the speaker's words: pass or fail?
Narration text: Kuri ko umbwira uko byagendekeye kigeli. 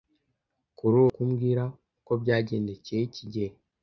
pass